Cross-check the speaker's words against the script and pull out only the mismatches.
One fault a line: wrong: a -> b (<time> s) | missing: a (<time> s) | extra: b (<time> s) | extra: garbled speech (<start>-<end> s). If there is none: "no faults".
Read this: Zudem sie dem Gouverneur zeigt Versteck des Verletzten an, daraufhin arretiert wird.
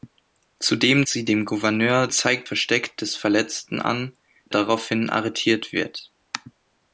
no faults